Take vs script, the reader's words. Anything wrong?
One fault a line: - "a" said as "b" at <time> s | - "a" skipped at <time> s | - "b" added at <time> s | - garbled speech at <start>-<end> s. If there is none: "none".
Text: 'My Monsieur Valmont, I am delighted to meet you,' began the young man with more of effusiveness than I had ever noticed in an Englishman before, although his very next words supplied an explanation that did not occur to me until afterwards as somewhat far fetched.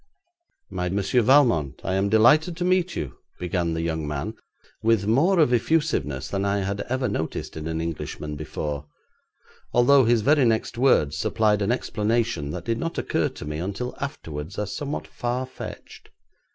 none